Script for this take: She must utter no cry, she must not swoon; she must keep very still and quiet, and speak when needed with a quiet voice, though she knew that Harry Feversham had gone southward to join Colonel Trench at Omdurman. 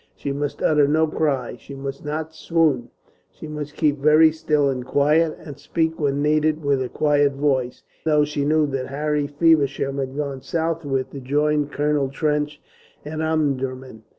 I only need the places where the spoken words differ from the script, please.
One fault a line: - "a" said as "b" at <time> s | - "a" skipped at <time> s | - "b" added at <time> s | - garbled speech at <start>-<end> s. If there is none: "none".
none